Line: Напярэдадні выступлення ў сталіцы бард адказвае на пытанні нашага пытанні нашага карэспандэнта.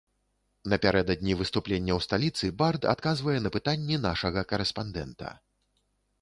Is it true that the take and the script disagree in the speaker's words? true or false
true